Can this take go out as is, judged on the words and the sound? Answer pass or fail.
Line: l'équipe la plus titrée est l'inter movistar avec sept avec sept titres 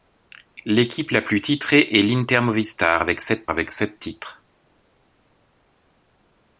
pass